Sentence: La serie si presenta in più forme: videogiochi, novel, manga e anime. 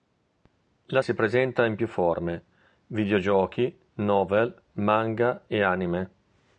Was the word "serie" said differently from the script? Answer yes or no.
yes